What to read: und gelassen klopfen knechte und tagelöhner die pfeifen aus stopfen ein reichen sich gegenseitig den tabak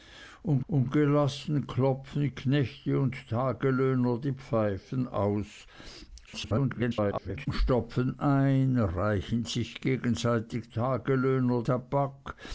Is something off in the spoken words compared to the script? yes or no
yes